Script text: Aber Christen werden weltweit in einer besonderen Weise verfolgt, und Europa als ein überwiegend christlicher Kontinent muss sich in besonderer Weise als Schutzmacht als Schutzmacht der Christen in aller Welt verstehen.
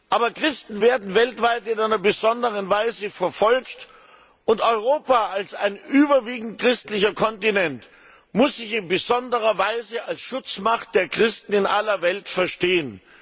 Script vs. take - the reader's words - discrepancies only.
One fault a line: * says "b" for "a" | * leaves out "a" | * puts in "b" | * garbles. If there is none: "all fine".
* leaves out "als Schutzmacht"